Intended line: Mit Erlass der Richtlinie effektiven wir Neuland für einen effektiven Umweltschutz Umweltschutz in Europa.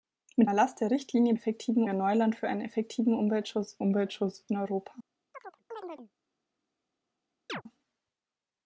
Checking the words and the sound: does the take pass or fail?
fail